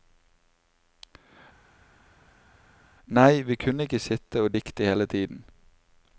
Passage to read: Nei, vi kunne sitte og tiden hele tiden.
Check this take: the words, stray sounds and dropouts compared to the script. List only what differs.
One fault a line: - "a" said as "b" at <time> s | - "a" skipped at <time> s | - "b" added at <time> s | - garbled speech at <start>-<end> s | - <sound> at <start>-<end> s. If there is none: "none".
- "ikke" added at 3.9 s
- "tiden" said as "dikte" at 4.5 s